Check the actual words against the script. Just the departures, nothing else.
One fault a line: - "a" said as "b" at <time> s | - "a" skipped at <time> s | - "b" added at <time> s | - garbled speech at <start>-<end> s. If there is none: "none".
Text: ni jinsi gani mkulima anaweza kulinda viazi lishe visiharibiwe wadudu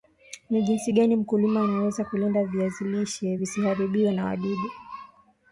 - "na" added at 4.1 s